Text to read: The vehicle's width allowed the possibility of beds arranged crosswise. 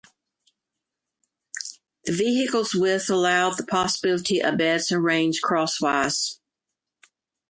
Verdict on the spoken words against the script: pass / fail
pass